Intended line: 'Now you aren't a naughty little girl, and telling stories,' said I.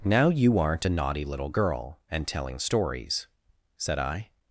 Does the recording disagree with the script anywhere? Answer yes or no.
no